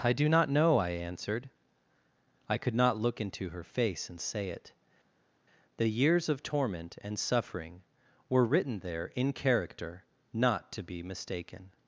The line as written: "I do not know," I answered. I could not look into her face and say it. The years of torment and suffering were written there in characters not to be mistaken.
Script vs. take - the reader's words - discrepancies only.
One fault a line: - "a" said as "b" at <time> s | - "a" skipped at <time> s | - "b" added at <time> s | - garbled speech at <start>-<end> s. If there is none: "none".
- "characters" said as "character" at 9.3 s